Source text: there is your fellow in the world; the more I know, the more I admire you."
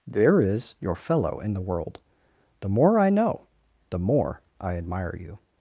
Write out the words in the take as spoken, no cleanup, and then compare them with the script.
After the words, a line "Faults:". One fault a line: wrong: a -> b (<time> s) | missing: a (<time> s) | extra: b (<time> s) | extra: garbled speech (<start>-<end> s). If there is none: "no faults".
there is your fellow in the world; the more I know, the more I admire you."
Faults:
no faults